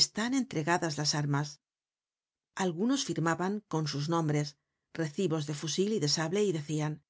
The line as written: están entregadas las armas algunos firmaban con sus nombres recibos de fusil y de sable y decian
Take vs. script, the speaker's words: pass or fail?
pass